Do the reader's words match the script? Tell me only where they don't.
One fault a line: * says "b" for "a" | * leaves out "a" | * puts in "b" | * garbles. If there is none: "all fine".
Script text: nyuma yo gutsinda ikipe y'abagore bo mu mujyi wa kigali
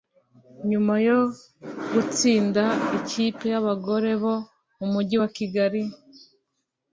all fine